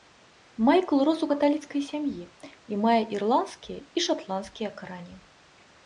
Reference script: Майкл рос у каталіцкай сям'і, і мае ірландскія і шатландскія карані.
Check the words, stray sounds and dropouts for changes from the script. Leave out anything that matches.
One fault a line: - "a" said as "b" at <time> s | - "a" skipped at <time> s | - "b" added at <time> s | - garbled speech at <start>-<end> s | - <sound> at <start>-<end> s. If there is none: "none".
none